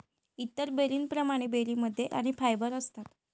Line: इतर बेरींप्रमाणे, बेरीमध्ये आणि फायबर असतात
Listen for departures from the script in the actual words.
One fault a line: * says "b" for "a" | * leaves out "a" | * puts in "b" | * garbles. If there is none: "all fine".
all fine